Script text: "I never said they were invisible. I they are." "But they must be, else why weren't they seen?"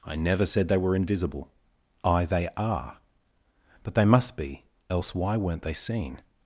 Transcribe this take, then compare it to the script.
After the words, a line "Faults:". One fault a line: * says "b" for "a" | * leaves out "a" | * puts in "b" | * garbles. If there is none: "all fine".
"I never said they were invisible. I they are." "But they must be, else why weren't they seen?"
Faults:
all fine